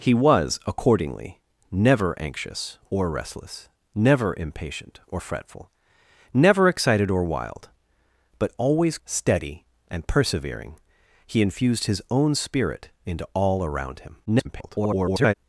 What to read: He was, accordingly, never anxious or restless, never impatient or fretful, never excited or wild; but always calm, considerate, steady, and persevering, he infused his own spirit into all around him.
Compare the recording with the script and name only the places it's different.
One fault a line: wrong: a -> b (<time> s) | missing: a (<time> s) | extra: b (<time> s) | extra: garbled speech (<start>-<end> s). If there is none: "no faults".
missing: calm considerate (9.0 s)
extra: garbled speech (14.3-15.3 s)